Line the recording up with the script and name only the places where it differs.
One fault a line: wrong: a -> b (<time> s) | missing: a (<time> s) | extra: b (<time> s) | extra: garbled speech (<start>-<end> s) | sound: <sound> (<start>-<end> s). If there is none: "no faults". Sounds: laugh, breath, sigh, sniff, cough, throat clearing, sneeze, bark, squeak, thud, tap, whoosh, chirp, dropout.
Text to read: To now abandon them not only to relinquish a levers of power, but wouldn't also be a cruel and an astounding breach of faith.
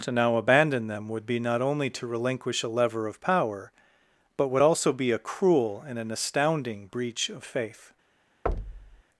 extra: would be (1.1 s)
wrong: levers -> lever (2.7 s)
wrong: wouldn't -> would (4.5 s)
sound: thud (8.5-9.0 s)